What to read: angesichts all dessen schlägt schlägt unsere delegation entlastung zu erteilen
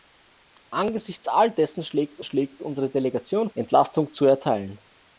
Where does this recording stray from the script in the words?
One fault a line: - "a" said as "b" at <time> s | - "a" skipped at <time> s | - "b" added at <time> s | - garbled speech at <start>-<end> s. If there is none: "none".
none